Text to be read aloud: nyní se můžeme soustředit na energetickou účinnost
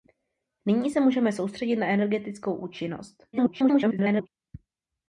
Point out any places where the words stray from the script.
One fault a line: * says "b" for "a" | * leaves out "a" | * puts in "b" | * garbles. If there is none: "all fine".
* garbles